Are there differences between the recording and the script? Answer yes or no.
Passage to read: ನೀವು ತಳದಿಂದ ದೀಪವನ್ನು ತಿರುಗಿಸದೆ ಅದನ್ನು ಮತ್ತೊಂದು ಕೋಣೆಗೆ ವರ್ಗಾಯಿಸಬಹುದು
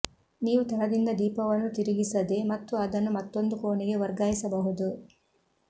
yes